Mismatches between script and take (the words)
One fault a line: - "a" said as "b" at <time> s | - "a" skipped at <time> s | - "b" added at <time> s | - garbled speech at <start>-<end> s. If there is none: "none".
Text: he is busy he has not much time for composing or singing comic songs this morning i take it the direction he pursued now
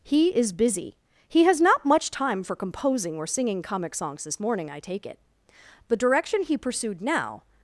none